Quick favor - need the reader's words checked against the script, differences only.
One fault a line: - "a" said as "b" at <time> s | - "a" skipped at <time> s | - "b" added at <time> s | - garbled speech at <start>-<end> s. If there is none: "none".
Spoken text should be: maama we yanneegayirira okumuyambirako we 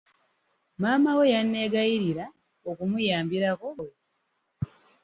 none